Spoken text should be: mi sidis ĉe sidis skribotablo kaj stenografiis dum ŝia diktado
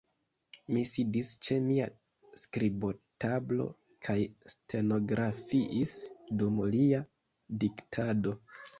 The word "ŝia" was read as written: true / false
false